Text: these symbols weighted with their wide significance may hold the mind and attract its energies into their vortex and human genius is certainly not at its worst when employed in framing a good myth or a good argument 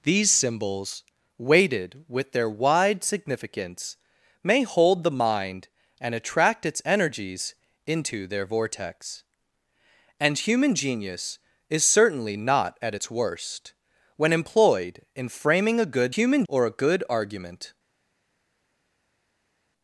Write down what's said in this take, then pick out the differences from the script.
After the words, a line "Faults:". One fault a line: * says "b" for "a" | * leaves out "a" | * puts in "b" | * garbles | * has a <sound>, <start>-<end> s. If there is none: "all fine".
these symbols weighted with their wide significance may hold the mind and attract its energies into their vortex and human genius is certainly not at its worst when employed in framing a good human or a good argument
Faults:
* says "human" for "myth"